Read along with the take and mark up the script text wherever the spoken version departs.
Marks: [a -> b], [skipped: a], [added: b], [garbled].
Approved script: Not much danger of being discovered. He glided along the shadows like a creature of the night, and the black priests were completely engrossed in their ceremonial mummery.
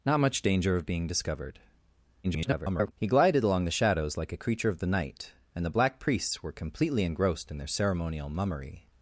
Not much danger of being discovered. [garbled] He glided along the shadows like a creature of the night, and the black priests were completely engrossed in their ceremonial mummery.